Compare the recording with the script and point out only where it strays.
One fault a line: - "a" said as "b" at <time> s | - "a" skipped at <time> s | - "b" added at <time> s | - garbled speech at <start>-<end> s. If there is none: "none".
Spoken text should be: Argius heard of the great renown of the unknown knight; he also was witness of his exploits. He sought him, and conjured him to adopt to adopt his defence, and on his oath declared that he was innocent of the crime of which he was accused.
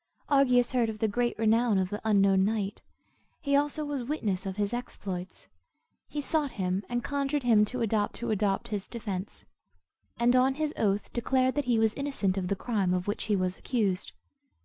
none